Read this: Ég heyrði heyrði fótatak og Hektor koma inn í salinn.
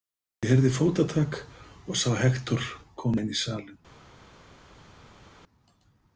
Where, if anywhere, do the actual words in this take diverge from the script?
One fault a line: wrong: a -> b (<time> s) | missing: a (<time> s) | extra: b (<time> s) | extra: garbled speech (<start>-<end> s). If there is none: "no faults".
missing: heyrði (0.7 s)
extra: sá (2.0 s)